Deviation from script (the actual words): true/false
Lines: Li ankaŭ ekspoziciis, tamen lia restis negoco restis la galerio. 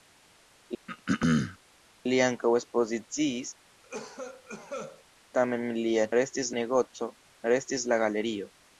false